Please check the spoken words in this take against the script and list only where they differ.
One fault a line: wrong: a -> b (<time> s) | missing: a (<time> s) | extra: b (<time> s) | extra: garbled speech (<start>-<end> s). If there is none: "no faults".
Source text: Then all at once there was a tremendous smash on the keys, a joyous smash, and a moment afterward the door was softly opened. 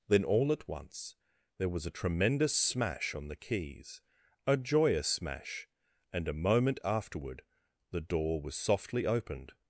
no faults